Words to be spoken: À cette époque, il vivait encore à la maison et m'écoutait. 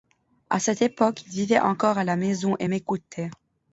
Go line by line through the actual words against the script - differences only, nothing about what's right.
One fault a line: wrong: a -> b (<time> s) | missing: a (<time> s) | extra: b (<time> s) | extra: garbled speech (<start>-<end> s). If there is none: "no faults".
no faults